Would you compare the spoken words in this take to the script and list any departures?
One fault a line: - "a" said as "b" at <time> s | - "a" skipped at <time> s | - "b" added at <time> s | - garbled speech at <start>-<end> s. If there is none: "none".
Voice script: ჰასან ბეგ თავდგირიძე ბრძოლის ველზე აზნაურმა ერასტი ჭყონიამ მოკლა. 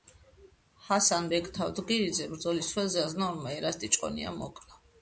none